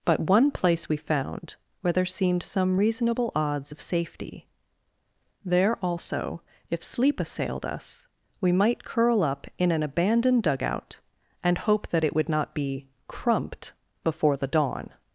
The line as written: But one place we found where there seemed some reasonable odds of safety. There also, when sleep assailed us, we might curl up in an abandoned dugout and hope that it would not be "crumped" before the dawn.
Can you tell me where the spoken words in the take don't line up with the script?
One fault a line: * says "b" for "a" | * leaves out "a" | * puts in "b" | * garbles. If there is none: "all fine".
* says "if" for "when"